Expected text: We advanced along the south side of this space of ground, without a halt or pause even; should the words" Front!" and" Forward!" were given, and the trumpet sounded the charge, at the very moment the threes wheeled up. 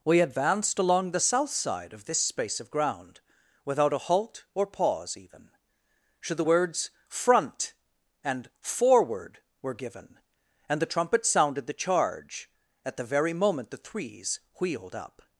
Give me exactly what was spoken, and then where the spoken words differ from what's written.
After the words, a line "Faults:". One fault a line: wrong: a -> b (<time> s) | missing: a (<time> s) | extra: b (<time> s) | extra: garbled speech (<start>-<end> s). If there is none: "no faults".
We advanced along the south side of this space of ground, without a halt or pause even; should the words" Front!" and" Forward!" were given, and the trumpet sounded the charge, at the very moment the threes wheeled up.
Faults:
no faults